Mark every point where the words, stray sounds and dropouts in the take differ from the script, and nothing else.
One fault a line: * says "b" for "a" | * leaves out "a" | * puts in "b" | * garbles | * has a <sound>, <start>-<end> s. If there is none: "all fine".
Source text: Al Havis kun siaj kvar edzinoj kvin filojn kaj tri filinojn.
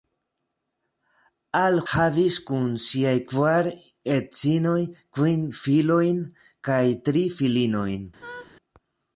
* has a laugh, 8.2-8.5 s